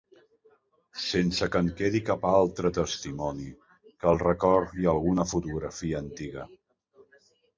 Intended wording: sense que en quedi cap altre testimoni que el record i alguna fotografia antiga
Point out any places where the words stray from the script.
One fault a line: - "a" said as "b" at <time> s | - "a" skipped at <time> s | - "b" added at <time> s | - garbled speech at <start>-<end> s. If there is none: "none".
none